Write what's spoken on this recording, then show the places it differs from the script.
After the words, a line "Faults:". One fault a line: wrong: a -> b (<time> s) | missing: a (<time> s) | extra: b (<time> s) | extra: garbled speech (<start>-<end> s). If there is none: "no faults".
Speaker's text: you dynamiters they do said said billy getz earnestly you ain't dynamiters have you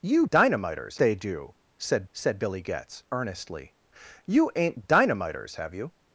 you dynamiters they do said said billy getz earnestly you ain't dynamiters have you
Faults:
no faults